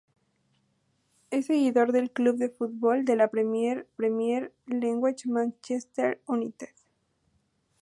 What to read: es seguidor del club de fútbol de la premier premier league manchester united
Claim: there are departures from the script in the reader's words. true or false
false